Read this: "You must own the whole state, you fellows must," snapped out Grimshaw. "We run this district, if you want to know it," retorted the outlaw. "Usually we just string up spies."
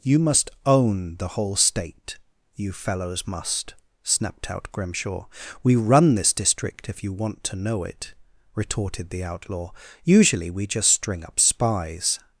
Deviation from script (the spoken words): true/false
false